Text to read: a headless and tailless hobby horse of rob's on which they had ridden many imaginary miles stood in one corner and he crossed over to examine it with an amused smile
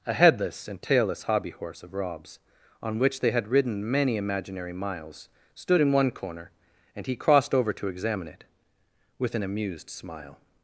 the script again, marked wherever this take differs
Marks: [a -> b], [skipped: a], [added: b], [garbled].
a headless and tailless hobby horse of rob's on which they had ridden many imaginary miles stood in one corner and he crossed over to examine it with an amused smile